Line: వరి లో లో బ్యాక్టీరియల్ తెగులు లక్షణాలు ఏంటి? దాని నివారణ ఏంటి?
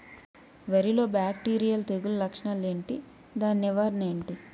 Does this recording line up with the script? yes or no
no